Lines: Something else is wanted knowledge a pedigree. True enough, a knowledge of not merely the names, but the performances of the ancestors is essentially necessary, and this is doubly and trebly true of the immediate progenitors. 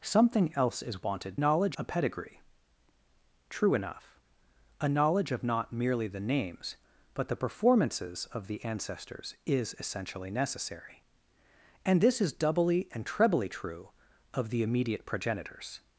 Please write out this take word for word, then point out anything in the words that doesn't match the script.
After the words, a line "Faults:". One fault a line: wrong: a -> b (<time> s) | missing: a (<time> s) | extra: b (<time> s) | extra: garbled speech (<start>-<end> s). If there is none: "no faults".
Something else is wanted knowledge a pedigree. True enough, a knowledge of not merely the names, but the performances of the ancestors is essentially necessary, and this is doubly and trebly true of the immediate progenitors.
Faults:
no faults